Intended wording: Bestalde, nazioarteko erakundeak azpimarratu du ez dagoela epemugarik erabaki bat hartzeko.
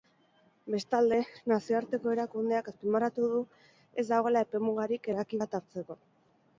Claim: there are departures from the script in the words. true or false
false